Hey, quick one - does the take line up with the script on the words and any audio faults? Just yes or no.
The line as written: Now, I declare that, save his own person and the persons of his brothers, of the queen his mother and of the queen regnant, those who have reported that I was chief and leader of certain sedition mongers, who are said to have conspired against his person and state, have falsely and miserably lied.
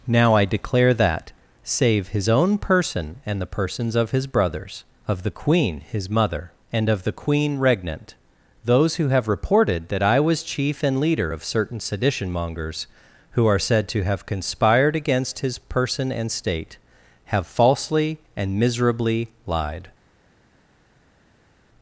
yes